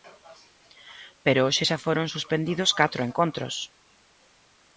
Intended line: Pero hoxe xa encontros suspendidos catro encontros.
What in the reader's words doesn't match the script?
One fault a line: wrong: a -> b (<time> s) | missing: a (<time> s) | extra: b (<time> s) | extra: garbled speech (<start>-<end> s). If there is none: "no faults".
wrong: encontros -> foron (1.9 s)